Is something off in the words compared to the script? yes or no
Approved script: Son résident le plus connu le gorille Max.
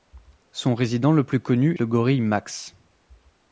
no